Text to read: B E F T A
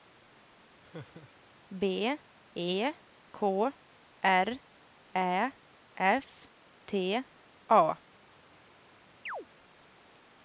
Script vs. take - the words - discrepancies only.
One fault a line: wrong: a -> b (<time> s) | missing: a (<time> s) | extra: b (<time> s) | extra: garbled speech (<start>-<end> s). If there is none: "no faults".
extra: K R Ä (3.3 s)